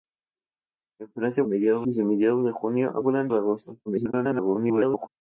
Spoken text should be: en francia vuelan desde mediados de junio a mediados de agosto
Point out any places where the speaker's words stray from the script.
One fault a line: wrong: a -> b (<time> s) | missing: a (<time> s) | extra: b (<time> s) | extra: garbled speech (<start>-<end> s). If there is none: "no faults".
wrong: vuelan -> mediados (1.4 s)
wrong: mediados -> vuelan (3.0 s)
extra: garbled speech (3.9-5.1 s)